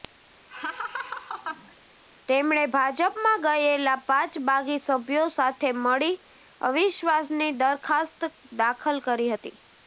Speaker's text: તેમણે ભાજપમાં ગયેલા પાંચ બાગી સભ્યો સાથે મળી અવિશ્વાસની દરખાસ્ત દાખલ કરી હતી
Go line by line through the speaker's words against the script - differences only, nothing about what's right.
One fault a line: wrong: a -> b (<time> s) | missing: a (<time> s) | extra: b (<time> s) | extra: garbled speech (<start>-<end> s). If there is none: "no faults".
no faults